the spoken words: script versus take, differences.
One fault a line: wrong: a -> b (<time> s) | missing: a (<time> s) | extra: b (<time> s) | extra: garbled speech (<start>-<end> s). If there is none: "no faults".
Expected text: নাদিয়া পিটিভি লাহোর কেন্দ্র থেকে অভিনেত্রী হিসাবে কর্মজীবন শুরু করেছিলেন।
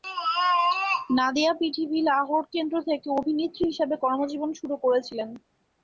no faults